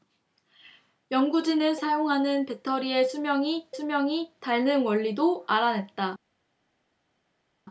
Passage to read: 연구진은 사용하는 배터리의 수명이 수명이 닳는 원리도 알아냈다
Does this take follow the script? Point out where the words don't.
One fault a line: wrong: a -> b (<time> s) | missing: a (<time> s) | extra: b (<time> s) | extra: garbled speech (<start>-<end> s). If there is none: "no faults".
no faults